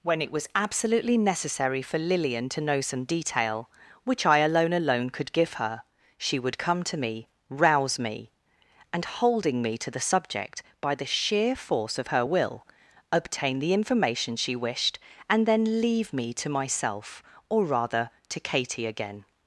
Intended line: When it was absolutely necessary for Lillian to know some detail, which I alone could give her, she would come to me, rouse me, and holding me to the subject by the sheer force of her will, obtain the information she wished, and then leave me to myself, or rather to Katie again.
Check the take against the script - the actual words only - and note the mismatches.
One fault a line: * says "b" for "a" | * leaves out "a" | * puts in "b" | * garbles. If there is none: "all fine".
* puts in "alone"